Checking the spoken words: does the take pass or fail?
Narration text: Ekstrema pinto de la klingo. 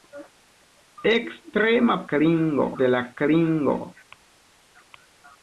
fail